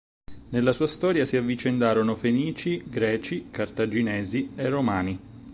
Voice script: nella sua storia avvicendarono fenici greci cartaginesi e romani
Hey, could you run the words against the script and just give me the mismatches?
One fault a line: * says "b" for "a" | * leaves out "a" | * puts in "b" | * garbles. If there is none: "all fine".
* puts in "si"